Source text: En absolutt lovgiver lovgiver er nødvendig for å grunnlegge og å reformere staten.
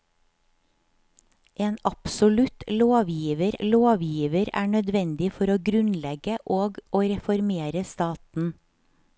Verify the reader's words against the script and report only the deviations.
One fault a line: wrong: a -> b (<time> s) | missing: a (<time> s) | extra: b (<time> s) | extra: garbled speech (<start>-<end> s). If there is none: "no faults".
no faults